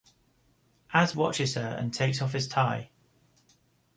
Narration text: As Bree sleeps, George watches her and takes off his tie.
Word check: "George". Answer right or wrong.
wrong